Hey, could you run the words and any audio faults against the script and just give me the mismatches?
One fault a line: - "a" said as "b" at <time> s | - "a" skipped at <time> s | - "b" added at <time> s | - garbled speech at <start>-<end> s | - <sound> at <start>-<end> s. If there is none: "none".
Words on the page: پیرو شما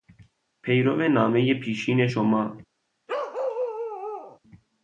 - "نامهی پیشین" added at 1.1 s
- bark at 3.1-4.4 s